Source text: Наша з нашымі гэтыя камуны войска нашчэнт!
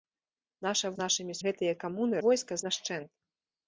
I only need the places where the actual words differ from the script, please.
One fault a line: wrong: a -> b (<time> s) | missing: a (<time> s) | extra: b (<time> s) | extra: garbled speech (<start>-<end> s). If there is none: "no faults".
no faults